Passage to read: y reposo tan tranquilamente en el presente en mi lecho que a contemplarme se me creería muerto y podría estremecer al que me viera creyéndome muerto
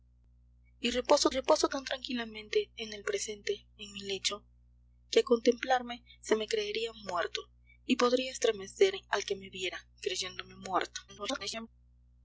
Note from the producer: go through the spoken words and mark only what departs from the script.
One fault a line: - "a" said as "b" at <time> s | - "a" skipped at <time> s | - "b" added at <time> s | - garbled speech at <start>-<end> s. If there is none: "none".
- "reposo" added at 1.3 s
- garbled speech at 11.1-11.7 s